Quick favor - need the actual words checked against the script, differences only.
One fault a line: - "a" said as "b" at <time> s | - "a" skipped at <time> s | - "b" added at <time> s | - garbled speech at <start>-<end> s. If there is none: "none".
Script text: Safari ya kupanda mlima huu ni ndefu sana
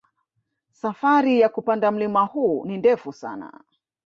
none